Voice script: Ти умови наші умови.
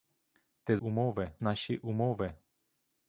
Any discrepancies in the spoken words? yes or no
no